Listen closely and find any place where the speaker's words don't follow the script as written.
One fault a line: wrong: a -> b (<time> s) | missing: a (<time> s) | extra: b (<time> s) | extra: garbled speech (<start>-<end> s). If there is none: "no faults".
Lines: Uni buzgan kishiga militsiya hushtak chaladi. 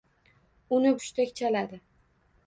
missing: buzgan kishiga militsiya (0.9 s)